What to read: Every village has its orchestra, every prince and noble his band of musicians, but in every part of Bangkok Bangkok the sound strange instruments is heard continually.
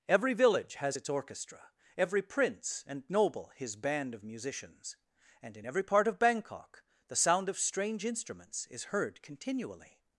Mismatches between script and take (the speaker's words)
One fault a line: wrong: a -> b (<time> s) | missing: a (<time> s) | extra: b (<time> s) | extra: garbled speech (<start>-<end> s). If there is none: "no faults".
wrong: but -> and (5.4 s)
missing: Bangkok (6.8 s)
extra: of (7.5 s)